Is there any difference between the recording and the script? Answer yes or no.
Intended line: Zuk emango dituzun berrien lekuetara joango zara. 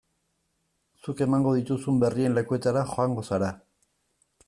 no